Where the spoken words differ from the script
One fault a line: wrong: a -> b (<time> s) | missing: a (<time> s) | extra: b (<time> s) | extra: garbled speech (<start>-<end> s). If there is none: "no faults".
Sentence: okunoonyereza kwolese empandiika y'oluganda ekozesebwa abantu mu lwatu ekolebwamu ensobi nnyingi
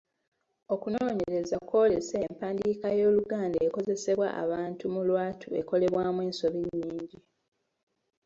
no faults